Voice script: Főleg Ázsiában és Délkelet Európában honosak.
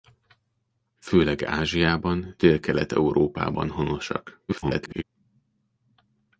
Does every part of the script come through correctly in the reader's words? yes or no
no